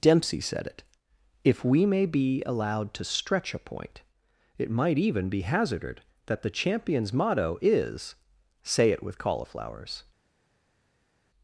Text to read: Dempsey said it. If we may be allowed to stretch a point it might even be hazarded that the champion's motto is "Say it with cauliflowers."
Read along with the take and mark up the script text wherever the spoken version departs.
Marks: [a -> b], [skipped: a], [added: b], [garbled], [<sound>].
Dempsey said it. If we may be allowed to stretch a point it might even be hazarded that the champion's motto is "Say it with cauliflowers."